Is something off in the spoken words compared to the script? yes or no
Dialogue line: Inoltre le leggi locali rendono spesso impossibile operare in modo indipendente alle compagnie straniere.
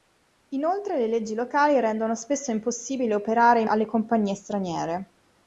yes